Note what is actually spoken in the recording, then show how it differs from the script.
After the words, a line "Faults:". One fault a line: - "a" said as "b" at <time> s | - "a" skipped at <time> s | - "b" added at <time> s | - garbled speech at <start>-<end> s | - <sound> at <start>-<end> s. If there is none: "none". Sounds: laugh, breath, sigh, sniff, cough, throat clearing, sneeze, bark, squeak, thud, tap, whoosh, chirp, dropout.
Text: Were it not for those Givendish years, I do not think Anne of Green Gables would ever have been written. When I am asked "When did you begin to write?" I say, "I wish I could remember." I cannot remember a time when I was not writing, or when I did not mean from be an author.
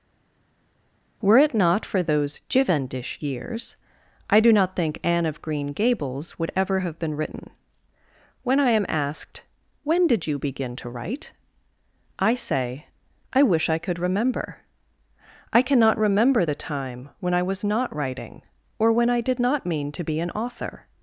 Were it not for those Givendish years, I do not think Anne of Green Gables would ever have been written. When I am asked "When did you begin to write?" I say, "I wish I could remember." I cannot remember the time when I was not writing, or when I did not mean to be an author.
Faults:
- "a" said as "the" at 16.4 s
- "from" said as "to" at 19.9 s